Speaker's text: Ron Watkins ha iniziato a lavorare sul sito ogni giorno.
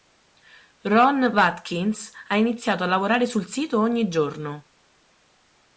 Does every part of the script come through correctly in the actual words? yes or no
yes